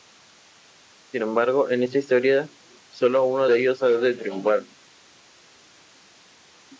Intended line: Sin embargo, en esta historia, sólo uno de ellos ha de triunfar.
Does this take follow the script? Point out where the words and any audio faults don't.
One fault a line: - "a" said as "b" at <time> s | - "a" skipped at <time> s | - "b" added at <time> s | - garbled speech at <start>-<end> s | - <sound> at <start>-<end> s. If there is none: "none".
none